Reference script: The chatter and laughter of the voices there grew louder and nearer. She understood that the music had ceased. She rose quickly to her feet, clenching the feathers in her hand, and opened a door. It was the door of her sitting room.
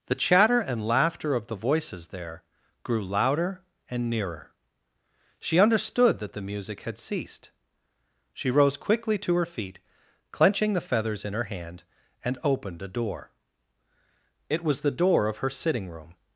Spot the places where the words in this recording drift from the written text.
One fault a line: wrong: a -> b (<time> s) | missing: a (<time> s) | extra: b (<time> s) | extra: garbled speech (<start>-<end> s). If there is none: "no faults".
no faults